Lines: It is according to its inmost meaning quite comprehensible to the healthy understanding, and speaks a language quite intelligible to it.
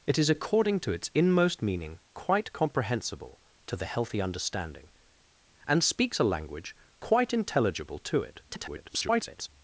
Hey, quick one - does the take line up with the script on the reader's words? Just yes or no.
no